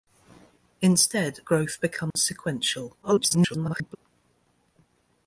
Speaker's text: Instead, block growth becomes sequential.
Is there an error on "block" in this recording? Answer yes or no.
yes